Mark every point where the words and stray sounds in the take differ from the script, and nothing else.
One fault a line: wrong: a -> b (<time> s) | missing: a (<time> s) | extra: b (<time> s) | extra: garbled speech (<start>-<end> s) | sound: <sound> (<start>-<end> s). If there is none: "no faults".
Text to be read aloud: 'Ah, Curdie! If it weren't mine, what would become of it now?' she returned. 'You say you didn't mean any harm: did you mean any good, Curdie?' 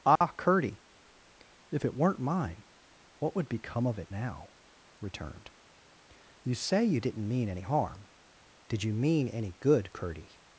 sound: dropout (0.2-0.2 s)
missing: she (4.5 s)